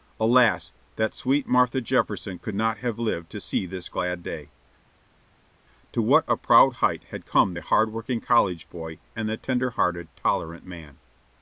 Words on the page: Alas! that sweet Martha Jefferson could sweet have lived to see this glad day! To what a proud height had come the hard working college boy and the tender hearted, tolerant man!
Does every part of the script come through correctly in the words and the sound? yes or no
no